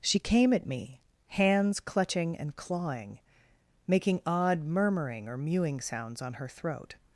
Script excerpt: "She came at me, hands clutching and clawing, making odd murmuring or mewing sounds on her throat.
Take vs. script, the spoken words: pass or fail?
pass